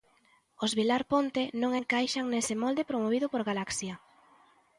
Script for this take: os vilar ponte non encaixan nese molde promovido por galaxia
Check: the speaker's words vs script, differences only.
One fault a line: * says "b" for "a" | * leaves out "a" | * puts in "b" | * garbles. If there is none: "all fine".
all fine